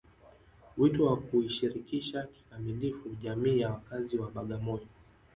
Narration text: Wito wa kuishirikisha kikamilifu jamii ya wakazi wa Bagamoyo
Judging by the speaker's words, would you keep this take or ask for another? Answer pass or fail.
pass